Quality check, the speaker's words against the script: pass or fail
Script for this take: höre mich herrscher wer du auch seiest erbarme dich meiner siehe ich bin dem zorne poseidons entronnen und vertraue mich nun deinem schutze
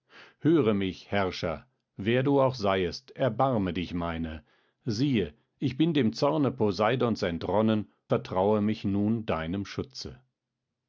fail